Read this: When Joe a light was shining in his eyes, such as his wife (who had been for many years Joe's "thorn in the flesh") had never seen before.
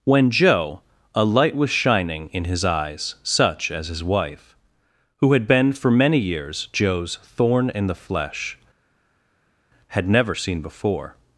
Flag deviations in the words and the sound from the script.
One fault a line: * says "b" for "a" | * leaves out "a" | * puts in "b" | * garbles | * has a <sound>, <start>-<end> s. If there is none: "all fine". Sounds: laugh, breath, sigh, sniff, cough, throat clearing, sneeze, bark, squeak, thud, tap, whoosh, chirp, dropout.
all fine